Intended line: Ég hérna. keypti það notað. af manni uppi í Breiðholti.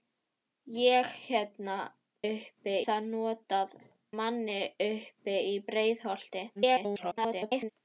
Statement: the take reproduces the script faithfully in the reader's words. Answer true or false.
false